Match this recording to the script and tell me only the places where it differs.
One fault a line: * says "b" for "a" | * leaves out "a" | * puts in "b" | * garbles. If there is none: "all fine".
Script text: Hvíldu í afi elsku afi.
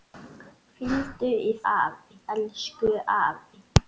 all fine